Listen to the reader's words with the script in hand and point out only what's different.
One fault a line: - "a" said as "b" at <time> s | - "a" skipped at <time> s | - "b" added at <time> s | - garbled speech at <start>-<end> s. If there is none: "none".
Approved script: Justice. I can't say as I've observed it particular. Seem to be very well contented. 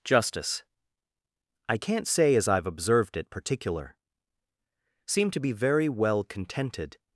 none